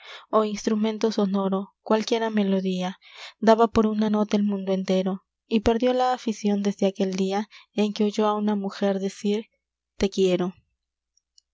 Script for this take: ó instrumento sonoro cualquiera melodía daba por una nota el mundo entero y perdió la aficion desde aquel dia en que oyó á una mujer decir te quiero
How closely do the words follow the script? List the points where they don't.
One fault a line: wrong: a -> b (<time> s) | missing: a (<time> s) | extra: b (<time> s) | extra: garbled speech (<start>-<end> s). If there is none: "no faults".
no faults